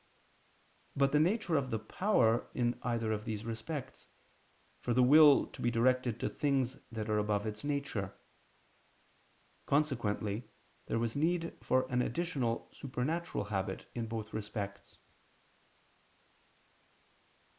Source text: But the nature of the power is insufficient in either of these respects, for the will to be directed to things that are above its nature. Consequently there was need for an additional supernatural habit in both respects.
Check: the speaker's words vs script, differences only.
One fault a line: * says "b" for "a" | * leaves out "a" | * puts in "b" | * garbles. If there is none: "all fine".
* leaves out "is insufficient"